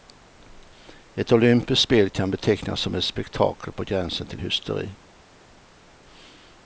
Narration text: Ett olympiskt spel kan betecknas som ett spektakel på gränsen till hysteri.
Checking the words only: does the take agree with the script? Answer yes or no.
yes